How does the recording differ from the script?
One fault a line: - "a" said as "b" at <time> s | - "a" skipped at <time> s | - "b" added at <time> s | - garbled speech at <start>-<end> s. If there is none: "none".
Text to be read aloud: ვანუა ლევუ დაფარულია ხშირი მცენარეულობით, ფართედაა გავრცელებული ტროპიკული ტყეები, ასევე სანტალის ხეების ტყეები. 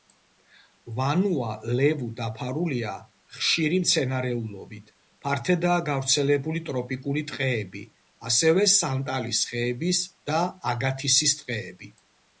- "და აგათისის" added at 10.3 s